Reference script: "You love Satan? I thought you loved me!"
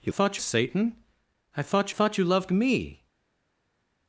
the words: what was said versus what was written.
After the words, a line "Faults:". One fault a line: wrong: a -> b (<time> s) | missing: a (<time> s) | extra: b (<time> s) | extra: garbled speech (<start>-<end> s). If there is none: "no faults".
"You thought Satan? I thought thought you loved me!"
Faults:
wrong: love -> thought (0.1 s)
extra: thought (1.9 s)